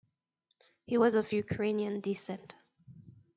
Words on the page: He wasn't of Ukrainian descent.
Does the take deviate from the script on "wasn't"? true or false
true